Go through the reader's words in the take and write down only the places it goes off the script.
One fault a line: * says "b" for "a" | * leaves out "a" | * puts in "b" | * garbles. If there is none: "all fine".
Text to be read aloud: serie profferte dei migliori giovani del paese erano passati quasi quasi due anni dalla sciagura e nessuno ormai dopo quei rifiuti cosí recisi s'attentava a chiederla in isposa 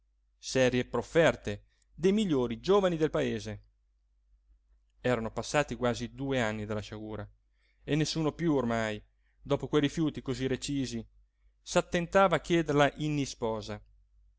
* leaves out "quasi"
* puts in "piú"